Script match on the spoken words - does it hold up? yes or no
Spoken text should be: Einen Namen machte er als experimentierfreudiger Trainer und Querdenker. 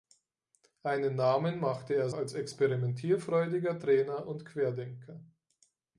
yes